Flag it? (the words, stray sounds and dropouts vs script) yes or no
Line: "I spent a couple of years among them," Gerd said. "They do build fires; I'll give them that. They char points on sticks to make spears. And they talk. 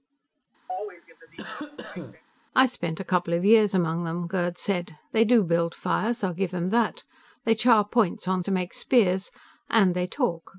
yes